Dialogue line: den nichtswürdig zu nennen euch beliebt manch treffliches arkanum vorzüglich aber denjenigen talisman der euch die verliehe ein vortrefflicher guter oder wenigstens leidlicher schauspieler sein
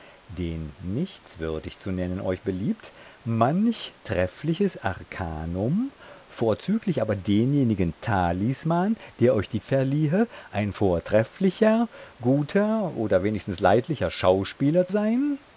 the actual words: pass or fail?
pass